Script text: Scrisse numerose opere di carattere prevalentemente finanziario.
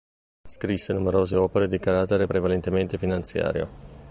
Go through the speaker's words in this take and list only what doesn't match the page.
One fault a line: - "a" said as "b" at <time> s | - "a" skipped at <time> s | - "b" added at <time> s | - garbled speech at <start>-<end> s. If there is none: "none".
none